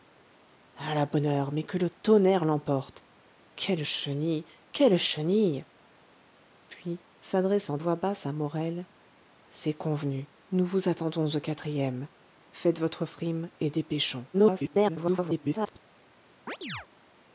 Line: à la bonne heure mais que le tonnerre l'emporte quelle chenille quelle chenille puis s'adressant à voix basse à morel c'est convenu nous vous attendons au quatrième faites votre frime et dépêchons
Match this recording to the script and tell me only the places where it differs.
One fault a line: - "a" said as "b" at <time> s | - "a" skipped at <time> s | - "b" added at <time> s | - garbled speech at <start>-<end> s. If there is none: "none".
- "à" skipped at 7.8 s
- garbled speech at 14.3-15.8 s